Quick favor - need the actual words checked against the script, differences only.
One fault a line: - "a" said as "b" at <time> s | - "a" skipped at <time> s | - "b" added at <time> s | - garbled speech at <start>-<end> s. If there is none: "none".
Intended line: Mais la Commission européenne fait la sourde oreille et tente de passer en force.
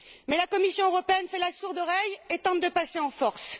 none